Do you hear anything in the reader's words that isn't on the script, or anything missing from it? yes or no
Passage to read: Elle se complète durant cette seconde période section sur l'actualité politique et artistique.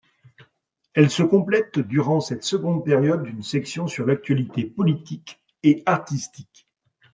yes